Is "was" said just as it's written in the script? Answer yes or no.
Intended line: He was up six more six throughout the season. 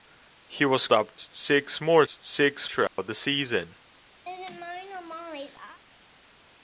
yes